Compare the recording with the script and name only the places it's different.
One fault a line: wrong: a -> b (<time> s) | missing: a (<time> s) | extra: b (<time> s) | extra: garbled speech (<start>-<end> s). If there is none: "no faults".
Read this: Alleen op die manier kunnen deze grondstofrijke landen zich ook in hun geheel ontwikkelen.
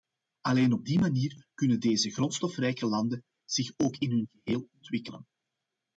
no faults